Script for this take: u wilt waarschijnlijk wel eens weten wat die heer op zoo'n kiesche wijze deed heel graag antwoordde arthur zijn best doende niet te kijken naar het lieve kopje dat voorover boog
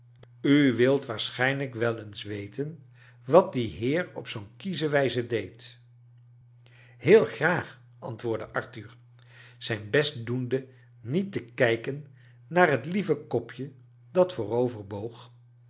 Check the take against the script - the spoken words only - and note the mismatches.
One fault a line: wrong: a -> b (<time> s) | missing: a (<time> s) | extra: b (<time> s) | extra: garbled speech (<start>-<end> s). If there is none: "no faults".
no faults